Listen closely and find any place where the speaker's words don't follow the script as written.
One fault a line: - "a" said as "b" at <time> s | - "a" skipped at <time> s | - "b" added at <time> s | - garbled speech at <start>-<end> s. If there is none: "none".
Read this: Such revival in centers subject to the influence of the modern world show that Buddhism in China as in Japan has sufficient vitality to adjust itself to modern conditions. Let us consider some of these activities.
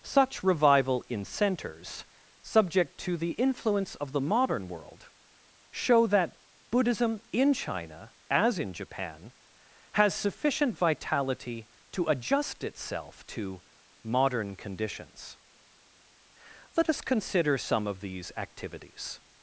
none